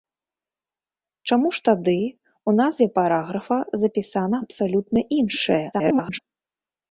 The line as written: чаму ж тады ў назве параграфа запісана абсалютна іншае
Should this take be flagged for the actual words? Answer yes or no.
yes